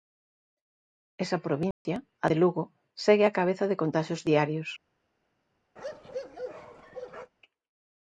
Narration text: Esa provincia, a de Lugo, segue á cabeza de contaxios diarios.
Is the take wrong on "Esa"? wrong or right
right